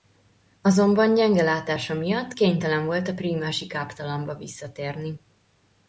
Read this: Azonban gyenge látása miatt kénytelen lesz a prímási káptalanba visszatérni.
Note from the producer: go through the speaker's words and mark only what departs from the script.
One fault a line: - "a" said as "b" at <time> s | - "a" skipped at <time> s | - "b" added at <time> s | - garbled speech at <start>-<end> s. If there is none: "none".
- "lesz" said as "volt" at 2.8 s